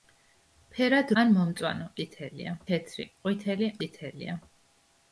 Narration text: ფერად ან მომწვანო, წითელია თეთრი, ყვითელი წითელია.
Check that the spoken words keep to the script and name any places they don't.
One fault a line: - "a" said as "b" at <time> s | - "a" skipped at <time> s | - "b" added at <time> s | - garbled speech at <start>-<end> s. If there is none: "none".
none